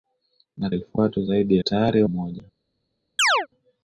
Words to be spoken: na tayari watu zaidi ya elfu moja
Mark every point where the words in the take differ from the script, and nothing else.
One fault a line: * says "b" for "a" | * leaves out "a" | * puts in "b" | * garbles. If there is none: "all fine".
* says "elfu" for "tayari"
* says "tayari" for "elfu"